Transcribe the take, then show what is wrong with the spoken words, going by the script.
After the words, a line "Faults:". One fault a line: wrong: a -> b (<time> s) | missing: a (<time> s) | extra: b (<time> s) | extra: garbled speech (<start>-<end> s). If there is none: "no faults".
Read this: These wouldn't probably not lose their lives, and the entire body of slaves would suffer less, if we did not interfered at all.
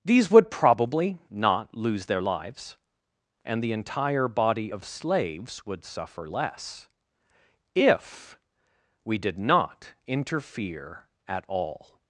These would probably not lose their lives, and the entire body of slaves would suffer less, if we did not interfere at all.
Faults:
wrong: wouldn't -> would (0.3 s)
wrong: interfered -> interfere (10.1 s)